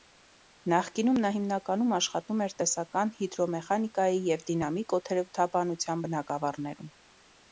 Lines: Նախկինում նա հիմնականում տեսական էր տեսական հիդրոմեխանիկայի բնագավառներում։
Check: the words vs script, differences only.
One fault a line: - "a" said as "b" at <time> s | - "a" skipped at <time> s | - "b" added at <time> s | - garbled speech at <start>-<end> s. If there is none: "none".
- "տեսական" said as "աշխատում" at 2.0 s
- "և դինամիկ օդերևութաբանության" added at 4.3 s